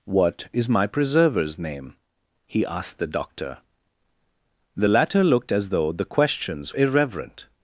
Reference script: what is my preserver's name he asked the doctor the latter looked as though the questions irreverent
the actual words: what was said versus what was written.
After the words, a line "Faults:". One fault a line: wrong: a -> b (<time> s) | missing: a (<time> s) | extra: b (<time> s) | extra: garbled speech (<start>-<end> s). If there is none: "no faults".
what is my preserver's name he asked the doctor the latter looked as though the questions irreverent
Faults:
no faults